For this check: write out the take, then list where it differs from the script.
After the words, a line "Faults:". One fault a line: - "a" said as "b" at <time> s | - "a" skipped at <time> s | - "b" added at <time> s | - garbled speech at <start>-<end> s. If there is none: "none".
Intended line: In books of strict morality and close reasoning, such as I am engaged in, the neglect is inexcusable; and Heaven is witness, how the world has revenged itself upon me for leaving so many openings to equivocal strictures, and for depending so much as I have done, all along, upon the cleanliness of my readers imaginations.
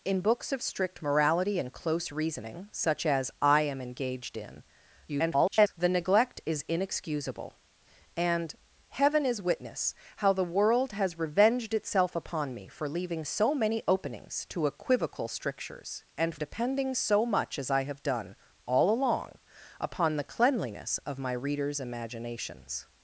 In books of strict morality and close reasoning, such as I am engaged in, [garbled] the neglect is inexcusable; and Heaven is witness, how the world has revenged itself upon me for leaving so many openings to equivocal strictures, and depending so much as I have done, all along, upon the cleanliness of my readers imaginations.
Faults:
- garbled speech at 5.1-5.7 s
- "for" skipped at 16.3 s